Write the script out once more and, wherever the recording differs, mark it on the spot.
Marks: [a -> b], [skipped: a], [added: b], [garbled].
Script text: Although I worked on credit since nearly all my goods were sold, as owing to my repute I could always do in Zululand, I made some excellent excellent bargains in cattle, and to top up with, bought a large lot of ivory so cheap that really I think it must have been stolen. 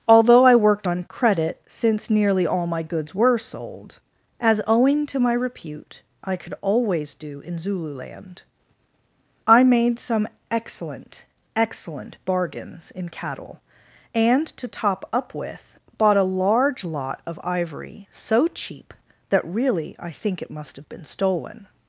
Although I worked on credit since nearly all my goods were sold, as owing to my repute I could always do in Zululand, I made some excellent excellent bargains in cattle, and to top up with, bought a large lot of ivory so cheap that really I think it must have been stolen.